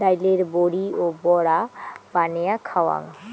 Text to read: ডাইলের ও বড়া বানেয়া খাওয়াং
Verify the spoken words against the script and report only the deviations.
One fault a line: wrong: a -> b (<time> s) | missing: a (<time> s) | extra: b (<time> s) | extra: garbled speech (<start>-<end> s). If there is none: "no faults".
extra: বড়ি (0.6 s)